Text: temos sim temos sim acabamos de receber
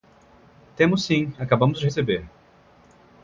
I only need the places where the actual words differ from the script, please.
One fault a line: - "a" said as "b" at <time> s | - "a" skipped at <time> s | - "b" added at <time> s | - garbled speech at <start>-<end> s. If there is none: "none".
- "temos sim" skipped at 1.3 s